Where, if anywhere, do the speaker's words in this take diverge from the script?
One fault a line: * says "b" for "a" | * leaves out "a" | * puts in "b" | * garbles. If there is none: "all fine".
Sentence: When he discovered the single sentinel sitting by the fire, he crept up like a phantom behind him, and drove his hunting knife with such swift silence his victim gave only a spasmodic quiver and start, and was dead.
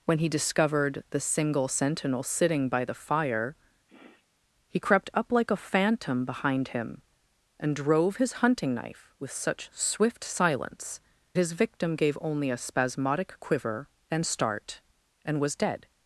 all fine